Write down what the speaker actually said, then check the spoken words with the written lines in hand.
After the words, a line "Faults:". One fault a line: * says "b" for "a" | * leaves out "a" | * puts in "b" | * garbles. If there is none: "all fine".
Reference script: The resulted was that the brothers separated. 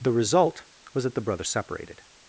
The result was that the brothers separated.
Faults:
* says "result" for "resulted"